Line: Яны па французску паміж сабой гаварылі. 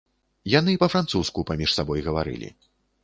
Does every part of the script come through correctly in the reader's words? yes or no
yes